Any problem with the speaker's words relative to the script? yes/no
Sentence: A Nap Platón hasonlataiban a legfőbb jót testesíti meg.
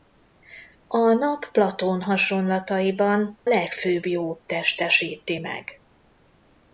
yes